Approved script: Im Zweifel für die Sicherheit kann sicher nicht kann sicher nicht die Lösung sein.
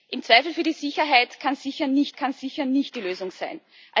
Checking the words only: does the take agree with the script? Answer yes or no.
yes